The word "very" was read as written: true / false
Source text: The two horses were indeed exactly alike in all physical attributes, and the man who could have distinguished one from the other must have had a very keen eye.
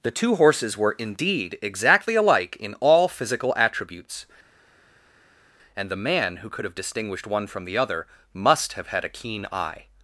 false